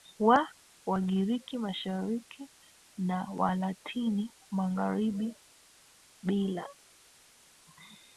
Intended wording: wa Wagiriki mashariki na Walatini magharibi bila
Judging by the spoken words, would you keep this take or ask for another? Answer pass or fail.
pass